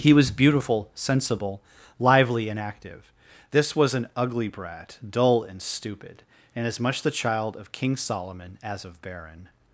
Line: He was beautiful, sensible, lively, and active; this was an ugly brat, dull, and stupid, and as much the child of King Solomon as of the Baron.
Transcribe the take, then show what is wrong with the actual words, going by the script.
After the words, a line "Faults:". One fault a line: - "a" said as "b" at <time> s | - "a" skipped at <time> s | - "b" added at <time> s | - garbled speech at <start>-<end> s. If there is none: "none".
He was beautiful, sensible, lively, and active; this was an ugly brat, dull, and stupid, and as much the child of King Solomon as of Baron.
Faults:
- "the" skipped at 9.0 s